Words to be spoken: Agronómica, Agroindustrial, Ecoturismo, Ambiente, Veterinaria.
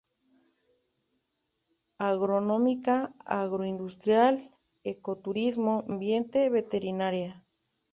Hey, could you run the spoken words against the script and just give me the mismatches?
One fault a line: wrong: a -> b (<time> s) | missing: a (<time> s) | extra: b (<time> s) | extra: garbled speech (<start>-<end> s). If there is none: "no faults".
no faults